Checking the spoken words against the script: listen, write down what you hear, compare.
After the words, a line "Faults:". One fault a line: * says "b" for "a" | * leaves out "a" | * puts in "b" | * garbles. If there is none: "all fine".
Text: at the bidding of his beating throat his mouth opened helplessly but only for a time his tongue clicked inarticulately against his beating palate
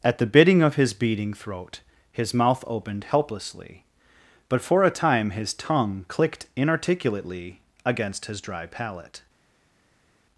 at the bidding of his beating throat his mouth opened helplessly but for a time his tongue clicked inarticulately against his dry palate
Faults:
* leaves out "only"
* says "dry" for "beating"